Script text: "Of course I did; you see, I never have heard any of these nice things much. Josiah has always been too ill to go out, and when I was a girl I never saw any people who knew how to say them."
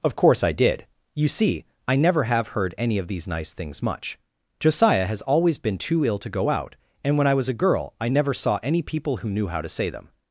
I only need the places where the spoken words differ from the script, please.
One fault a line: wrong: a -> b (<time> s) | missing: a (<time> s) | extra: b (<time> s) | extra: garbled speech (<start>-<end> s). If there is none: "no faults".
no faults